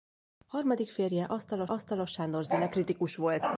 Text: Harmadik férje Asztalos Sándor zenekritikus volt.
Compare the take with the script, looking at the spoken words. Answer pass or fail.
fail